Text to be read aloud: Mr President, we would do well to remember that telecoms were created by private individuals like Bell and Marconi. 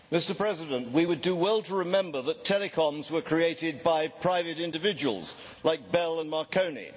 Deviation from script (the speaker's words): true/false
false